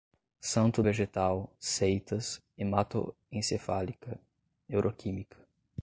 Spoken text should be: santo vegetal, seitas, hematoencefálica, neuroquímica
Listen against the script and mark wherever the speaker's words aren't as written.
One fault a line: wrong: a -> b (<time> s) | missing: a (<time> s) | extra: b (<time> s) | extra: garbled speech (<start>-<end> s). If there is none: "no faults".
no faults